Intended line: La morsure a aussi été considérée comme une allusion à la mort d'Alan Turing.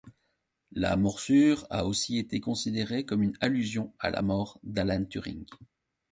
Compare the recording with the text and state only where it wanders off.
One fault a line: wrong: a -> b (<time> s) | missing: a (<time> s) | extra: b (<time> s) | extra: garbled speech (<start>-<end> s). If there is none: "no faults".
no faults